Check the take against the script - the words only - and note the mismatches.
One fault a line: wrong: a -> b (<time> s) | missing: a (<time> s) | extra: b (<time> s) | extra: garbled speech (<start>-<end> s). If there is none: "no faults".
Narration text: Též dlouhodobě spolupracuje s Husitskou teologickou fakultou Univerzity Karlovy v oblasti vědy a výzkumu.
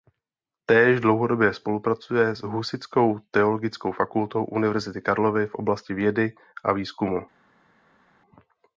no faults